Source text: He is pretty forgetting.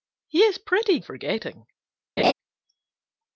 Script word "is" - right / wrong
right